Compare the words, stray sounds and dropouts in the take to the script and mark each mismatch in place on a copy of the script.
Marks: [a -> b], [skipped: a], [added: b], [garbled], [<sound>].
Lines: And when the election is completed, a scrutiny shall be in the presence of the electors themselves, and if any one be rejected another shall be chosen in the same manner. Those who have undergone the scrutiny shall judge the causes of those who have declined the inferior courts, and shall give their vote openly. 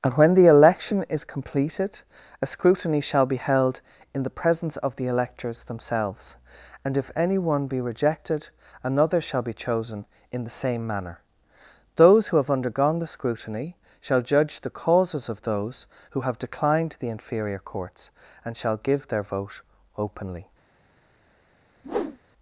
And when the election is completed, a scrutiny shall be [added: held] in the presence of the electors themselves, and if any one be rejected another shall be chosen in the same manner. Those who have undergone the scrutiny shall judge the causes of those who have declined the inferior courts, and shall give their vote openly. [whoosh]